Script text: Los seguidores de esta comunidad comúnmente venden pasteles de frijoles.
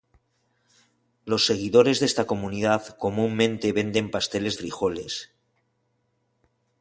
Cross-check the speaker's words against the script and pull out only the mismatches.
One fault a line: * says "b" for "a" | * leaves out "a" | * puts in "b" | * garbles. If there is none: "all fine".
* leaves out "de"